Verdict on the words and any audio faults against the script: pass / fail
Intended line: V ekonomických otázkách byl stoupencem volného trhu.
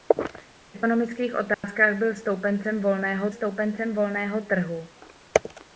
fail